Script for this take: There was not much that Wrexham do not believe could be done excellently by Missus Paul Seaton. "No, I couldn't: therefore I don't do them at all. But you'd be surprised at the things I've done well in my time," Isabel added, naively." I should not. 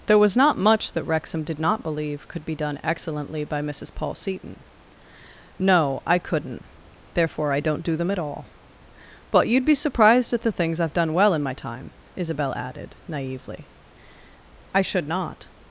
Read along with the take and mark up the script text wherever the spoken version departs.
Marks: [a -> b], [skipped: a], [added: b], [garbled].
There was not much that Wrexham [do -> did] not believe could be done excellently by Missus Paul Seaton. "No, I couldn't: therefore I don't do them at all. But you'd be surprised at the things I've done well in my time," Isabel added, naively." I should not.